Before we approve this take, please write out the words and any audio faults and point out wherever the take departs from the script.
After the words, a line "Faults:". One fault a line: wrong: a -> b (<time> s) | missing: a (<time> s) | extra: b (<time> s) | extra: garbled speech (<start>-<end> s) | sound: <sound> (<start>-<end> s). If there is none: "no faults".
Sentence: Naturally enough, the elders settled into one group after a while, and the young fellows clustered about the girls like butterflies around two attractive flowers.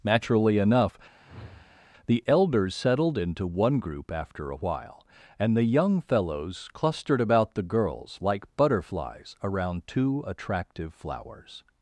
Naturally enough, the elders settled into one group after a while, and the young fellows clustered about the girls like butterflies around two attractive flowers.
Faults:
sound: whoosh (1.2-1.8 s)